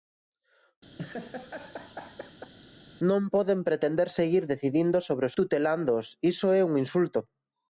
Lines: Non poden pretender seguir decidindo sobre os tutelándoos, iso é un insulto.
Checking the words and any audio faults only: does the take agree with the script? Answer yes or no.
no